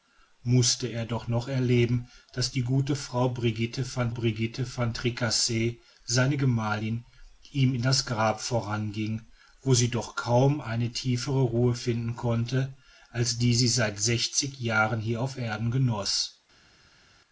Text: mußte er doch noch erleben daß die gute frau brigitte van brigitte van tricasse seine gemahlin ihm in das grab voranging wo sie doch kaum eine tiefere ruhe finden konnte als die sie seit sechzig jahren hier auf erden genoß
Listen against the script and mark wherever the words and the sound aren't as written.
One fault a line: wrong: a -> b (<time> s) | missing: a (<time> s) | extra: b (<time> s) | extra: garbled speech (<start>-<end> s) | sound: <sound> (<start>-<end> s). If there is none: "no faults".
no faults